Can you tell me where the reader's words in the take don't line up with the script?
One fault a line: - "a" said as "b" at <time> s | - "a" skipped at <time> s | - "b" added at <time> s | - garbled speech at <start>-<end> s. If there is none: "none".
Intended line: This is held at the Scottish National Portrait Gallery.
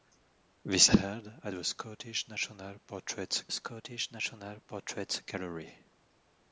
- "is" skipped at 0.9 s
- "Scottish National Portrait" added at 3.5 s